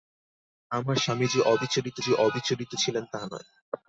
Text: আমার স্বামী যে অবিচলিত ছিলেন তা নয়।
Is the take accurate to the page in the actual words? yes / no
no